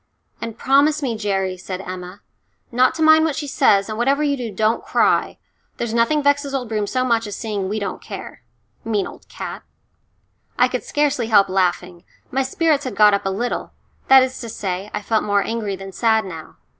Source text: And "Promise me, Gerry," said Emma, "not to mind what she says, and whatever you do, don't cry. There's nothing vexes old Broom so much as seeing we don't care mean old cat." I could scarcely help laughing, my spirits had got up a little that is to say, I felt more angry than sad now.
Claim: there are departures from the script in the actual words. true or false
false